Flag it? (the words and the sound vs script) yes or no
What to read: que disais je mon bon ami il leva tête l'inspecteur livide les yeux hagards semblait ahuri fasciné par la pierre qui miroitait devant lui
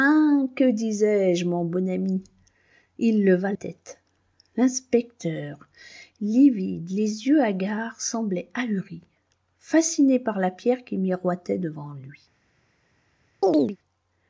yes